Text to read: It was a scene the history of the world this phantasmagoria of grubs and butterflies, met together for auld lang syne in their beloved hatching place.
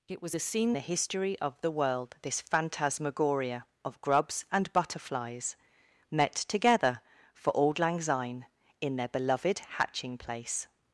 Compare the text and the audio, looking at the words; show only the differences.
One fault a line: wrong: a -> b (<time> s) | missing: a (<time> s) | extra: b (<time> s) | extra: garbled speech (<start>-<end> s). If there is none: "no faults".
no faults